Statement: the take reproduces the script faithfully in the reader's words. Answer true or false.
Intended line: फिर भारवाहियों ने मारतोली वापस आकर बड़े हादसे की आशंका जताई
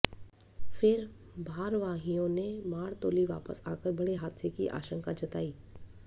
true